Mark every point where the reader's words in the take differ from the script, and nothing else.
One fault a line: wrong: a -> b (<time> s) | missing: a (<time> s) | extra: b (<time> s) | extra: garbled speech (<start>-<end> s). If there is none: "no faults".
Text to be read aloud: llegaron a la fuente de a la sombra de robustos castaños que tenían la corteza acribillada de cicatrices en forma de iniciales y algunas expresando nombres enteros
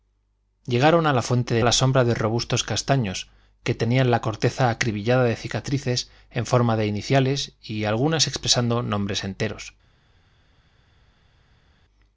no faults